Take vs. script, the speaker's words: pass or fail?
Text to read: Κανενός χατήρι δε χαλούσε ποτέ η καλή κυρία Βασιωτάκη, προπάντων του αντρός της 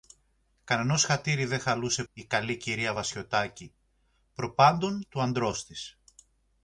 fail